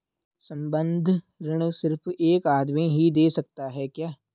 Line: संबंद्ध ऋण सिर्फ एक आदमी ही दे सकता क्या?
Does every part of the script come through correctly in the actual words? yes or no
no